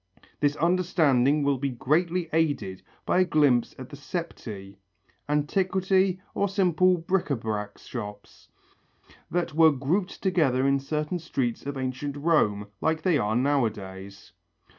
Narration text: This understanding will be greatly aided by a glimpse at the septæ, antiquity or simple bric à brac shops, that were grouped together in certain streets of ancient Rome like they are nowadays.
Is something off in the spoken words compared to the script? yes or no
no